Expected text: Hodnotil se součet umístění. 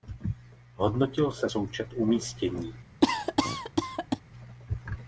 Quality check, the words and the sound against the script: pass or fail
fail